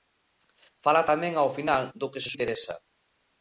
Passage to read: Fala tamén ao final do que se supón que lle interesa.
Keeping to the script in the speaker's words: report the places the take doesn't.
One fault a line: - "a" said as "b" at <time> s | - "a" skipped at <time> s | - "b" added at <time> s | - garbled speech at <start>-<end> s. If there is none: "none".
- "supón que lle" skipped at 2.3 s